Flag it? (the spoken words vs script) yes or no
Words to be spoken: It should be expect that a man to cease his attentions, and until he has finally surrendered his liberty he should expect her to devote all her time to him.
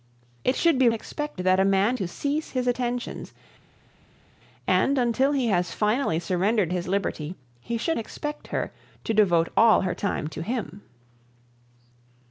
no